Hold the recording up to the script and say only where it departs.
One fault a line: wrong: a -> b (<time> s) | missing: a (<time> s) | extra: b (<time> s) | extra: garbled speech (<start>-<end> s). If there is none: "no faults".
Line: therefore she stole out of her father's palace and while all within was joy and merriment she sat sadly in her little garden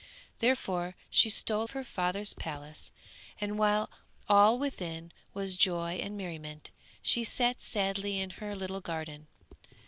missing: out (1.7 s)